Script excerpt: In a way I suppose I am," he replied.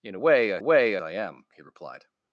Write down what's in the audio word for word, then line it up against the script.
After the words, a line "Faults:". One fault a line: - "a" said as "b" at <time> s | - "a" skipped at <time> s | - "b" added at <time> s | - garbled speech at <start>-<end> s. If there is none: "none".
In a way I way I am," he replied.
Faults:
- "suppose" said as "way" at 0.6 s